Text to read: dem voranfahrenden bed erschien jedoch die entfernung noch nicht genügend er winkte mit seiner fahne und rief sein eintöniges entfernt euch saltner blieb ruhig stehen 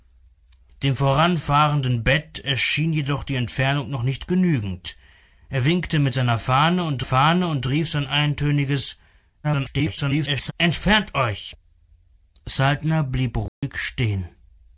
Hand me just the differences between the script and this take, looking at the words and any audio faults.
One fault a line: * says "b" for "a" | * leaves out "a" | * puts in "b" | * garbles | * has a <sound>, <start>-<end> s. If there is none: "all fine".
* puts in "fahne und"
* garbles
* has a dropout, 13.5-13.6 s